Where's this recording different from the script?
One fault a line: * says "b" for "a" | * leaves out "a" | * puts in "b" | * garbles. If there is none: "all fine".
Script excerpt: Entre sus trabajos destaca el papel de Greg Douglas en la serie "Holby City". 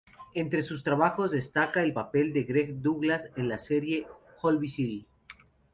all fine